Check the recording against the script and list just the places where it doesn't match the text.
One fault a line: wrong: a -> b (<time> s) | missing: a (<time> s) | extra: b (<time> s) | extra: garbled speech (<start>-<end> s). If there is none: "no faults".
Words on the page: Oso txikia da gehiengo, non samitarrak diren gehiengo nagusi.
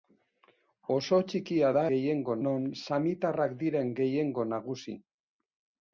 no faults